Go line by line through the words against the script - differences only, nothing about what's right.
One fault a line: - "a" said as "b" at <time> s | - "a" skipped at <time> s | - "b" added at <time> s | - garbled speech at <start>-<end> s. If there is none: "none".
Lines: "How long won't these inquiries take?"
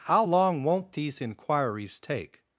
none